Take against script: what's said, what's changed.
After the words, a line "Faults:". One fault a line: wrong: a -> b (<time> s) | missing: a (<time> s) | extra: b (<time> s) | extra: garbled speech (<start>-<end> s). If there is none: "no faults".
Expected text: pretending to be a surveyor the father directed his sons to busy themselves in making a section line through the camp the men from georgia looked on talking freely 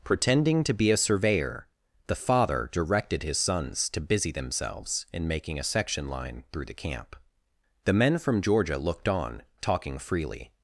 pretending to be a surveyor the father directed his sons to busy themselves in making a section line through the camp the men from georgia looked on talking freely
Faults:
no faults